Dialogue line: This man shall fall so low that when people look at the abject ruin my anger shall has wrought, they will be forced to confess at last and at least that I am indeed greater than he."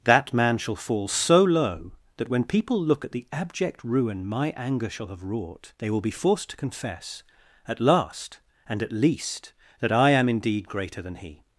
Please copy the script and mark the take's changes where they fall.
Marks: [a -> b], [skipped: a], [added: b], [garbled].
[This -> That] man shall fall so low that when people look at the abject ruin my anger shall [has -> have] wrought, they will be forced to confess at last and at least that I am indeed greater than he."